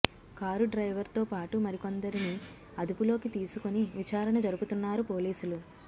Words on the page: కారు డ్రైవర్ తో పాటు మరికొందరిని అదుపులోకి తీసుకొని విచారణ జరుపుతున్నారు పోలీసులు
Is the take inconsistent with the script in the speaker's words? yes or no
no